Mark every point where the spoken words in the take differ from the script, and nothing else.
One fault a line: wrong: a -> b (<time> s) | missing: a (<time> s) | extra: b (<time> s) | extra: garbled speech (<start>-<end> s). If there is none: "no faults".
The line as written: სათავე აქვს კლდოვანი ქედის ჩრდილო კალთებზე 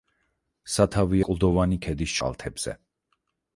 missing: აქვს (1.2 s)
missing: ჩრდილო (2.2 s)